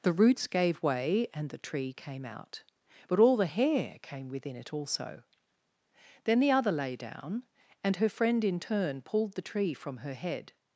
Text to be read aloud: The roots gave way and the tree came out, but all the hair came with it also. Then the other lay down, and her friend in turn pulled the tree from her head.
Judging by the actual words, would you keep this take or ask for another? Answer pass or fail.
fail